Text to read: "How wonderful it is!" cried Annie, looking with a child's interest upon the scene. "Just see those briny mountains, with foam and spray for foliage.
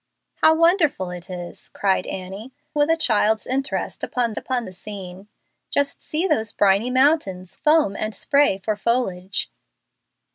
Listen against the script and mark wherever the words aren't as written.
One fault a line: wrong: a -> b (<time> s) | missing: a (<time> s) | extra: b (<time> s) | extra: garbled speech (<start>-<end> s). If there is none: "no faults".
missing: looking (2.5 s)
extra: upon (4.4 s)
missing: with (7.6 s)